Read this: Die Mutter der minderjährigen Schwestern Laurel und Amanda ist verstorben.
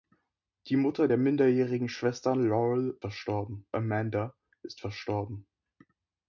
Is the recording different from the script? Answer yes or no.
yes